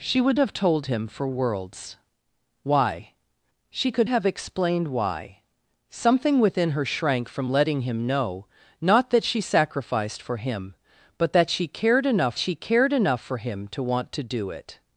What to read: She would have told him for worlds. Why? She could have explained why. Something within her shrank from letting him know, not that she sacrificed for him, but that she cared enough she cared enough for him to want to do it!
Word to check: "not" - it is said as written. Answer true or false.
true